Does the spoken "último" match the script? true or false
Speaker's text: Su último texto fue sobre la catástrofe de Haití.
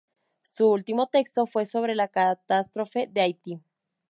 true